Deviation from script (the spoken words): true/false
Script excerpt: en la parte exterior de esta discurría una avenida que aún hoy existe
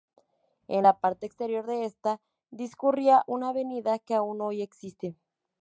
false